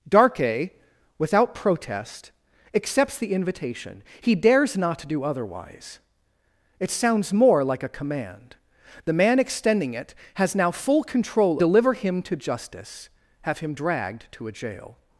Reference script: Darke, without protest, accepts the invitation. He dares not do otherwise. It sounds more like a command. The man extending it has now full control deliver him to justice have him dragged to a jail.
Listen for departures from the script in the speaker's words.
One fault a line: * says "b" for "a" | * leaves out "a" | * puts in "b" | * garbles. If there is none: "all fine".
all fine